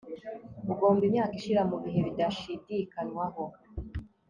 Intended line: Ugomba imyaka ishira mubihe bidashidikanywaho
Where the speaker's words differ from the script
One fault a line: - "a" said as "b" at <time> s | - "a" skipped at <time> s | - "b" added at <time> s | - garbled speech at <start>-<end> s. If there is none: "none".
none